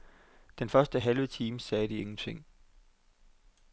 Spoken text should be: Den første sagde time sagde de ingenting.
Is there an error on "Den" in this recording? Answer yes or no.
no